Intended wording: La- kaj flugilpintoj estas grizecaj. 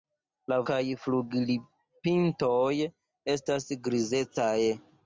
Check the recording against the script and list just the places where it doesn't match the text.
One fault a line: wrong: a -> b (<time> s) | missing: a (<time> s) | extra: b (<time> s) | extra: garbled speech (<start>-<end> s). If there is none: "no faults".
no faults